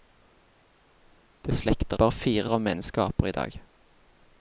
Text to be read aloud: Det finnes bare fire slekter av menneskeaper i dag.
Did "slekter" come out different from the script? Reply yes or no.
yes